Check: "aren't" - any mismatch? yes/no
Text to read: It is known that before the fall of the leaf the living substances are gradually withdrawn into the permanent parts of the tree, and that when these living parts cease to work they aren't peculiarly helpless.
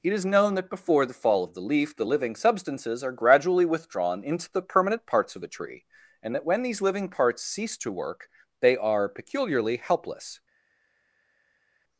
yes